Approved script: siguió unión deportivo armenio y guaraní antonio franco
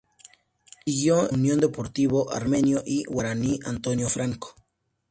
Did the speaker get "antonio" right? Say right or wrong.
right